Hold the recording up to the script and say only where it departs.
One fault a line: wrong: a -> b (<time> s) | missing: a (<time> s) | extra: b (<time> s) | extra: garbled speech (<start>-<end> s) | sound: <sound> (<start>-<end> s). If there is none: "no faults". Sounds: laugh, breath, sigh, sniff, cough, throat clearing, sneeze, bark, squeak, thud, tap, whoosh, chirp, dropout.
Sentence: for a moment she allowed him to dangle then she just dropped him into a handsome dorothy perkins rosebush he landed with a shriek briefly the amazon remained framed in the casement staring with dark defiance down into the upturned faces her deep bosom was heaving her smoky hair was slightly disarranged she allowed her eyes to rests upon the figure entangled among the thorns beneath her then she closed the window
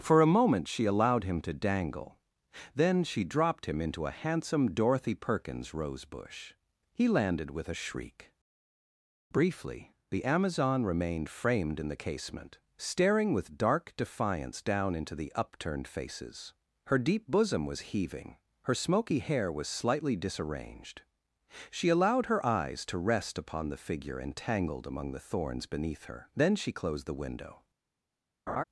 missing: just (3.2 s)
wrong: rests -> rest (23.0 s)
sound: laugh (28.5-28.6 s)